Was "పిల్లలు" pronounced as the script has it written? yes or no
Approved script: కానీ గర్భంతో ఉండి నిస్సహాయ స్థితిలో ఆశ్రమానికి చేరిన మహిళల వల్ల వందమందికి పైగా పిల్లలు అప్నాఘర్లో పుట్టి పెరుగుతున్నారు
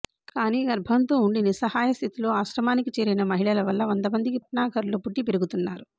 no